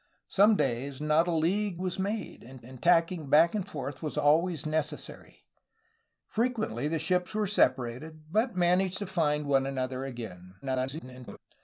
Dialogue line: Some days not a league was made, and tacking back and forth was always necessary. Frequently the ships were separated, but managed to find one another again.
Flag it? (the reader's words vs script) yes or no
yes